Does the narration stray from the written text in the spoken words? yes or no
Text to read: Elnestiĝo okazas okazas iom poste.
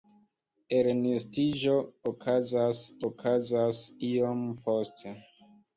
no